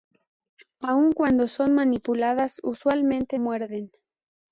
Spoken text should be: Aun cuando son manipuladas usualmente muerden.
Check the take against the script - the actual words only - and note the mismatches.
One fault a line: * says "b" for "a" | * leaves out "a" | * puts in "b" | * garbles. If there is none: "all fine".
all fine